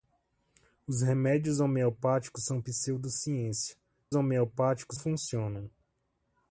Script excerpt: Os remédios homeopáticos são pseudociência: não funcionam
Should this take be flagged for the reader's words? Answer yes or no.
yes